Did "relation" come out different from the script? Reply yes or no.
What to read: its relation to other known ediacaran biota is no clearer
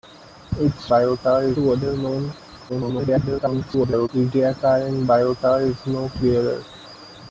yes